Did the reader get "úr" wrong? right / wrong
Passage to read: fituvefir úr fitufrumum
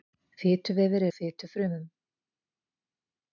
right